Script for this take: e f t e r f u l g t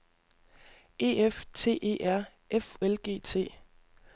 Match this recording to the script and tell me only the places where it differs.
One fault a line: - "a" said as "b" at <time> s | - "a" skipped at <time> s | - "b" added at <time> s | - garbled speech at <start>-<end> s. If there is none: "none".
- "u" skipped at 2.8 s